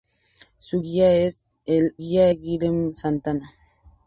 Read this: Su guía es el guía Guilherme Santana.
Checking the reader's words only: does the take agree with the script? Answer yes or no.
yes